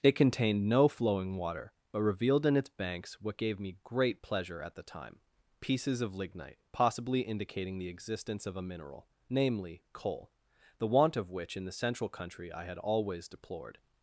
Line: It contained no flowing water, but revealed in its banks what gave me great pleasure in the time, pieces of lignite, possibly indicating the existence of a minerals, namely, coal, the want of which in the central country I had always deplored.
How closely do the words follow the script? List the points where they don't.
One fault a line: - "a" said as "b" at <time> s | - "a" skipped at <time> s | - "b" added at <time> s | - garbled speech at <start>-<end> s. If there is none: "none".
- "in" said as "at" at 4.6 s
- "minerals" said as "mineral" at 8.6 s